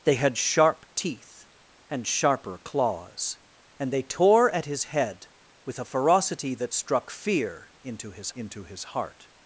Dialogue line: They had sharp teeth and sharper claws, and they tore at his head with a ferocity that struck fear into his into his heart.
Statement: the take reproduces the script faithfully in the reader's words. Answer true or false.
true